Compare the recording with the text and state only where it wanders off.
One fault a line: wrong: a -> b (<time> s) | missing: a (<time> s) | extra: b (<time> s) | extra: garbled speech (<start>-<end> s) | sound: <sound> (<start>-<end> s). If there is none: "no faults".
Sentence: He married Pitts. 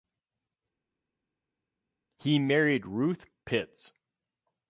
extra: Ruth (2.9 s)